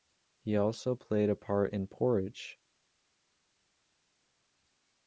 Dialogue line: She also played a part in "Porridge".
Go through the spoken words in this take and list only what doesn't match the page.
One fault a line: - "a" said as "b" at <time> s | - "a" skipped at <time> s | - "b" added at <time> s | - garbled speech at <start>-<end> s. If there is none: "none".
- "She" said as "He" at 0.4 s